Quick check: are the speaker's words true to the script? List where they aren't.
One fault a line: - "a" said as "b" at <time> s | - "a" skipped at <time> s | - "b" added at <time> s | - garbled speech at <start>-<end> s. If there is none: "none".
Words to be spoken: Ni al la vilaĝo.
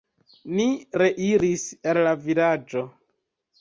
- "reiris" added at 1.0 s